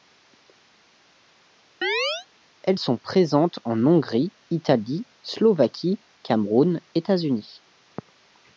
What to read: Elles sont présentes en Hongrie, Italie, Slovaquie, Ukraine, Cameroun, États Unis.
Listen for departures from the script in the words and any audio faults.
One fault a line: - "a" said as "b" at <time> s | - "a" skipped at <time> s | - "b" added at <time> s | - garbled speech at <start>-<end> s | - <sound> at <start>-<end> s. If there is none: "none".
- chirp at 1.8-2.3 s
- "Ukraine" skipped at 6.0 s